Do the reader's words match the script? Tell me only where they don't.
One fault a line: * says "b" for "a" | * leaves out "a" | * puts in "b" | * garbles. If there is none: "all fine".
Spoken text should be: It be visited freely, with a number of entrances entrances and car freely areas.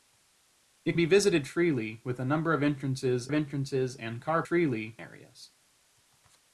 all fine